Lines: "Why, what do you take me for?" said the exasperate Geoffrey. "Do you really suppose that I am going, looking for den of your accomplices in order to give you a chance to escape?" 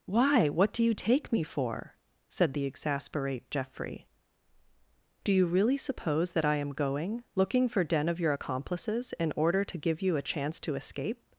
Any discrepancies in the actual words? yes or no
no